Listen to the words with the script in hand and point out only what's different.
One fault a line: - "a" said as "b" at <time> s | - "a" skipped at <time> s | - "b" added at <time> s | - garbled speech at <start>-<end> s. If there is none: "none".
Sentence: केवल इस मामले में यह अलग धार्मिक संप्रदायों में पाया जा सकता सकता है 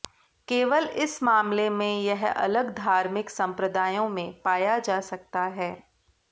- "सकता" skipped at 5.4 s